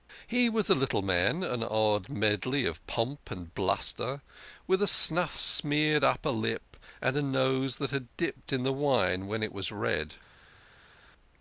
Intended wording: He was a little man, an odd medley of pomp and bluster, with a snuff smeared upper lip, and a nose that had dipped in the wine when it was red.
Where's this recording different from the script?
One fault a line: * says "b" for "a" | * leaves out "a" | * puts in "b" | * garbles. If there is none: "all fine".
all fine